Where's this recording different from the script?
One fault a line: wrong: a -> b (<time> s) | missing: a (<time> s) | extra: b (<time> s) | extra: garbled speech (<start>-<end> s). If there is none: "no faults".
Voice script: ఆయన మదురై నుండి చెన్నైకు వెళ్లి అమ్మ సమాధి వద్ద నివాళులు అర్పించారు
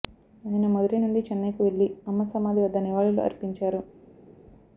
no faults